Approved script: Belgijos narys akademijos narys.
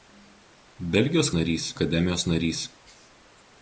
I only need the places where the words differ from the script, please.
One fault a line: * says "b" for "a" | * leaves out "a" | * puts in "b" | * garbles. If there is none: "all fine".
all fine